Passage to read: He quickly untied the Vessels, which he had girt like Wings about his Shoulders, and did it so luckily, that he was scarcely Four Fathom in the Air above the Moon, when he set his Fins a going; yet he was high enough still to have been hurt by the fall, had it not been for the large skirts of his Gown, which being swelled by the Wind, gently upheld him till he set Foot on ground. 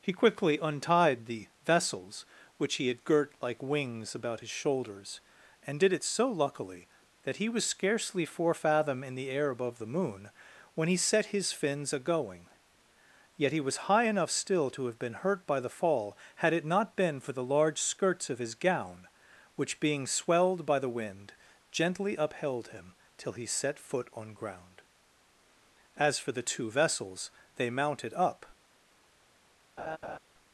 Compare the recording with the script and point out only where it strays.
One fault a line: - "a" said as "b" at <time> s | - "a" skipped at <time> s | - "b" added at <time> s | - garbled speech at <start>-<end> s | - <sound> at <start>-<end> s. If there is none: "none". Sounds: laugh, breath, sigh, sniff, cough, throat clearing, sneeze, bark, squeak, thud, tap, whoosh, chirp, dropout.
- "As for the two Vessels they mounted up" added at 26.0 s
- laugh at 29.8-30.2 s